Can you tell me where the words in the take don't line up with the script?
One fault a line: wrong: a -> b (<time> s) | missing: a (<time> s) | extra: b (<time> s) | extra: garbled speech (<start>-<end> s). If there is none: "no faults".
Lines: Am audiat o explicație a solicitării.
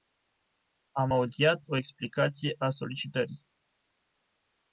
no faults